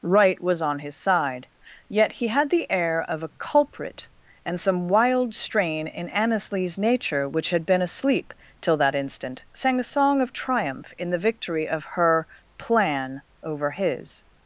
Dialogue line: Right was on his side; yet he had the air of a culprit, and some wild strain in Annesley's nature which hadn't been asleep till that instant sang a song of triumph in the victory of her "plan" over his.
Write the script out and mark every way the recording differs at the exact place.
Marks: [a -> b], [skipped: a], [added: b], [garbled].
Right was on his side; yet he had the air of a culprit, and some wild strain in Annesley's nature which [hadn't -> had] been asleep till that instant sang a song of triumph in the victory of her "plan" over his.